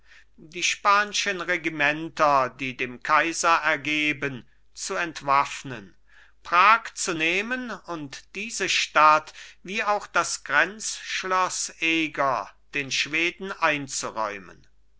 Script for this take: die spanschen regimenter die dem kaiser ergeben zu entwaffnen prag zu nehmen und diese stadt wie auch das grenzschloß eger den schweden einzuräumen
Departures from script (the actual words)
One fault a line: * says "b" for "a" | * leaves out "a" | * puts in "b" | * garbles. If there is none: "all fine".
all fine